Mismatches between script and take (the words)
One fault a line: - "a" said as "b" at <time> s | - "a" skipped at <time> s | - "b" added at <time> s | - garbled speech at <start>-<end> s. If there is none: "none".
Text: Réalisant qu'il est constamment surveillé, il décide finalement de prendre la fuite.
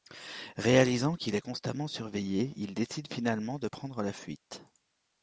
none